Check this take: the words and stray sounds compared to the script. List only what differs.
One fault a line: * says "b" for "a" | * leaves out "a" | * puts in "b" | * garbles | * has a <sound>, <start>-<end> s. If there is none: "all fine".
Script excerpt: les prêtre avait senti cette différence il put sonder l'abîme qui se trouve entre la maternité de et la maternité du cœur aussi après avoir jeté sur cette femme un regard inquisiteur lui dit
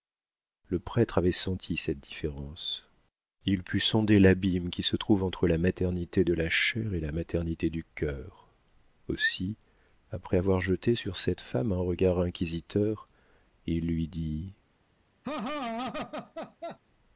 * says "le" for "les"
* puts in "la chair"
* puts in "il"
* has a laugh, 15.2-16.8 s